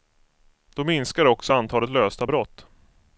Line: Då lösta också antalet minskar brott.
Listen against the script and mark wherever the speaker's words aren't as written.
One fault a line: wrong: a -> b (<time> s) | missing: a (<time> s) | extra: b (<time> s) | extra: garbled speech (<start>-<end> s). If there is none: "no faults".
wrong: lösta -> minskar (0.8 s)
wrong: minskar -> lösta (1.9 s)